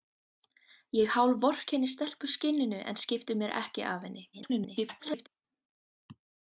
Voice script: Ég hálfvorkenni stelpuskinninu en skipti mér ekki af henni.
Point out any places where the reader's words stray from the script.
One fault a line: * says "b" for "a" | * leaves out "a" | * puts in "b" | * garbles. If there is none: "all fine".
* garbles